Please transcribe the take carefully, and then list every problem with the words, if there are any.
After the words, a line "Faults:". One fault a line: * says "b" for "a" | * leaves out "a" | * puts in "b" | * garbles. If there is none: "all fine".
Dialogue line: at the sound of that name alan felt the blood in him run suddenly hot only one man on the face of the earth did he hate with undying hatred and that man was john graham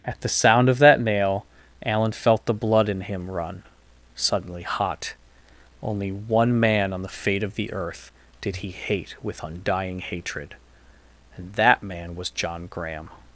at the sound of that nail alan felt the blood in him run suddenly hot only one man on the fate of the earth did he hate with undying hatred and that man was john graham
Faults:
* says "nail" for "name"
* says "fate" for "face"